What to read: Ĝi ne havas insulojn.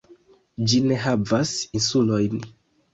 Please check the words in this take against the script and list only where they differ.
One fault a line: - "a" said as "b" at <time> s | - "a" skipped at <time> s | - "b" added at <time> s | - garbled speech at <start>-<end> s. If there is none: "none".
none